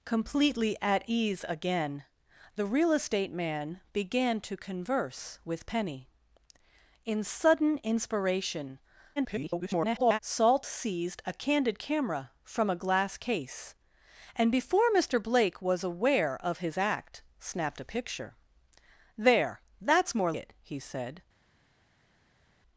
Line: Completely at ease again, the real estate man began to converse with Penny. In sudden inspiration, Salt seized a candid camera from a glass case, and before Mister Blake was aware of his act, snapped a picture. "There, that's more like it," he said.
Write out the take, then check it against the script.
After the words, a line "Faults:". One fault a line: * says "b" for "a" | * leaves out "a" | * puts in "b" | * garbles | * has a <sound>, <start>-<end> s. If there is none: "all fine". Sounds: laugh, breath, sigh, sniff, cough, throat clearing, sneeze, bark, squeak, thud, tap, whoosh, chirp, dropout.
Completely at ease again, the real estate man began to converse with Penny. In sudden inspiration, [garbled] Salt seized a candid camera from a glass case, and before Mister Blake was aware of his act, snapped a picture. "There, that's more it," he said.
Faults:
* garbles
* leaves out "like"